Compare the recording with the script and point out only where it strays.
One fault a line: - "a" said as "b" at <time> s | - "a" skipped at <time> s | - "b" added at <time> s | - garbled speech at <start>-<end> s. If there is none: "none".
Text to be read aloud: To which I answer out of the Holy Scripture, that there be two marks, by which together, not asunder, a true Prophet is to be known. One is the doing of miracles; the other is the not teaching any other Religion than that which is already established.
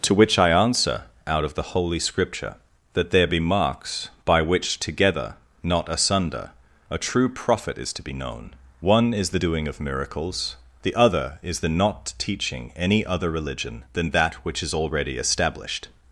- "two" skipped at 3.4 s